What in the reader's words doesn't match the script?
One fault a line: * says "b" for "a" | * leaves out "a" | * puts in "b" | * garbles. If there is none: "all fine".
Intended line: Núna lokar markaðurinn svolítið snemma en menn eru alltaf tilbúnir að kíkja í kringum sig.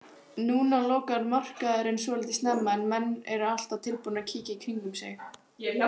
all fine